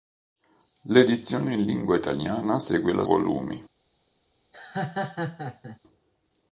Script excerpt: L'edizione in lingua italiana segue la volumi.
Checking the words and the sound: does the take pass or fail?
fail